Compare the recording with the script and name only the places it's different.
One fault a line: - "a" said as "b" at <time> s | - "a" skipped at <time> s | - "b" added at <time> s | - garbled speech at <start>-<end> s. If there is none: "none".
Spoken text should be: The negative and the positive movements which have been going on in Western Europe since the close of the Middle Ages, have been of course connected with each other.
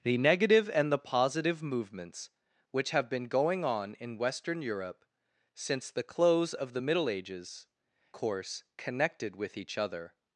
- "have been of" skipped at 7.7 s